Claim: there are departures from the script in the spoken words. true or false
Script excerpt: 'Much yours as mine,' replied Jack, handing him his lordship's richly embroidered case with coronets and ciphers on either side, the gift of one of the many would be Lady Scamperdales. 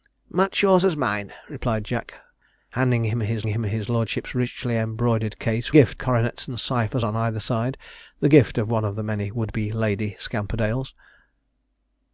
true